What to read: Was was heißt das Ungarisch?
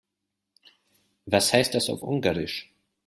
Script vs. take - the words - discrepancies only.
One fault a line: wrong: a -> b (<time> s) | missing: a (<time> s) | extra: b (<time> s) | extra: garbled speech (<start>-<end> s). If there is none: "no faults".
missing: was (1.5 s)
extra: auf (1.9 s)